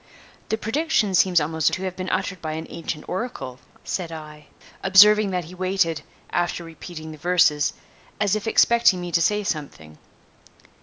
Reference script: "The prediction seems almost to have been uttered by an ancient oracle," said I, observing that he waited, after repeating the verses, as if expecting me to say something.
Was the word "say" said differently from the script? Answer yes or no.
no